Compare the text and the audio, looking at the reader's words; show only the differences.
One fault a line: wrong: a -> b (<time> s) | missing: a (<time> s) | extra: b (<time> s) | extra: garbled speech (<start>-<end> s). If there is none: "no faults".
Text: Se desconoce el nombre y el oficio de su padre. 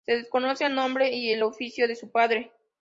no faults